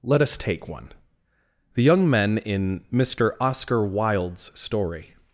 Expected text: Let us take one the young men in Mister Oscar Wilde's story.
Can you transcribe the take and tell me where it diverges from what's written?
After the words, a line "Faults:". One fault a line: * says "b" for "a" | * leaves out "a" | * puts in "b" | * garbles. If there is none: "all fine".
Let us take one the young men in Mister Oscar Wilde's story.
Faults:
all fine